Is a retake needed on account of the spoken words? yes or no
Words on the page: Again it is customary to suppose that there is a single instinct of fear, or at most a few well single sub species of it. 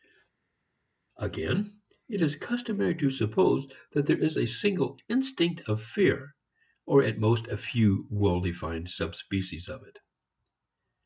yes